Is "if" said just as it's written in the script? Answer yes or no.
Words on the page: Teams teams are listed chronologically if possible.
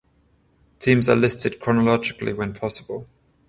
no